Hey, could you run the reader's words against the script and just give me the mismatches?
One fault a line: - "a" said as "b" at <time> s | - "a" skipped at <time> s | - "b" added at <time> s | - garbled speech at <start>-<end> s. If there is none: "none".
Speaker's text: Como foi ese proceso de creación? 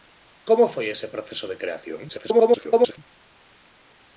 - garbled speech at 2.1-3.0 s